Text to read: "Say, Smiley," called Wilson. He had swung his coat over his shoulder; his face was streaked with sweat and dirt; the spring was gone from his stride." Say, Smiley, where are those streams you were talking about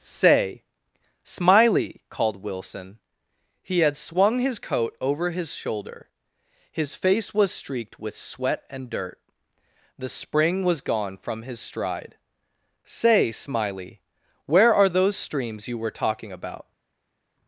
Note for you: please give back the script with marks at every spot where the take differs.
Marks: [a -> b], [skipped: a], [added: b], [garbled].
"Say, Smiley," called Wilson. He had swung his coat over his shoulder; his face was streaked with sweat and dirt; the spring was gone from his stride." Say, Smiley, where are those streams you were talking about